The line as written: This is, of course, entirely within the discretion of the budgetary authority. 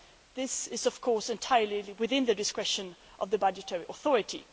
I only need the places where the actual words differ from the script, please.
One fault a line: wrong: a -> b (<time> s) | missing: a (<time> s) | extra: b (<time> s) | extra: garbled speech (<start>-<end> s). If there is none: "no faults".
no faults